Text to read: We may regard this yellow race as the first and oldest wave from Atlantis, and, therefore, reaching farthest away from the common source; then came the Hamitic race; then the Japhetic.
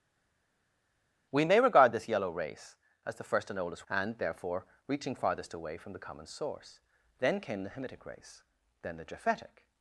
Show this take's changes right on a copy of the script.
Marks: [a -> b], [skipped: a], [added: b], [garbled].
We may regard this yellow race as the first and oldest [skipped: wave from Atlantis,] and, therefore, reaching farthest away from the common source; then came the Hamitic race; then the Japhetic.